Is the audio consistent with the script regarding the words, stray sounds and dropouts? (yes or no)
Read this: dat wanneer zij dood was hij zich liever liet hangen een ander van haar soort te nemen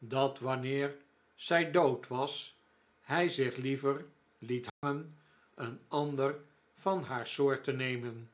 no